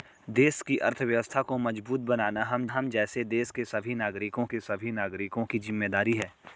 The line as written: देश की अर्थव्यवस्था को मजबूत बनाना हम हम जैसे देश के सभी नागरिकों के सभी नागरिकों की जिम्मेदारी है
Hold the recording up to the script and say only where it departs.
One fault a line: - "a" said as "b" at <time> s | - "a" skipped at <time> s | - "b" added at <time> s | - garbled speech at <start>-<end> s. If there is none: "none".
none